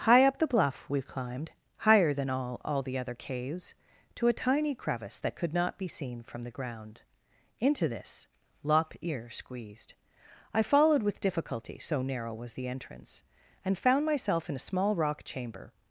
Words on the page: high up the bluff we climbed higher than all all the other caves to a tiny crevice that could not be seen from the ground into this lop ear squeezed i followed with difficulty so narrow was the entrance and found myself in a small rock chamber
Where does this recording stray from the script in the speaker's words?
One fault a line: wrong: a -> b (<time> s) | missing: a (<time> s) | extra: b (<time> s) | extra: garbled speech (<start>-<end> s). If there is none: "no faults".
no faults